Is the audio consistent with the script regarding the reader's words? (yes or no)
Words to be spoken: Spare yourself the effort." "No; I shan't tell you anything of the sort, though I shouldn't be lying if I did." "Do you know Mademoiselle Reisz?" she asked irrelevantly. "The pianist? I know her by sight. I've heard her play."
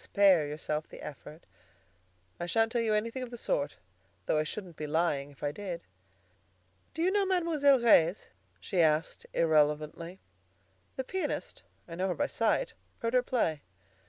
no